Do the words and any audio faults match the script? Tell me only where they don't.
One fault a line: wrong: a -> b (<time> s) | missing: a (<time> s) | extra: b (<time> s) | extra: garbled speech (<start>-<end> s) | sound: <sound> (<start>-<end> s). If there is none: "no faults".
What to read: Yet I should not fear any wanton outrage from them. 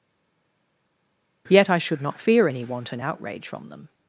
no faults